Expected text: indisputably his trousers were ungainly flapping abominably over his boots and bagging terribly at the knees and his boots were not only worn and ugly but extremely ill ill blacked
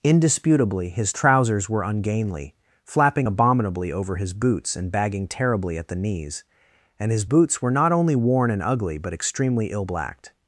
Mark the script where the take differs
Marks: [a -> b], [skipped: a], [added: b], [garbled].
indisputably his trousers were ungainly flapping abominably over his boots and bagging terribly at the knees and his boots were not only worn and ugly but extremely ill [skipped: ill] blacked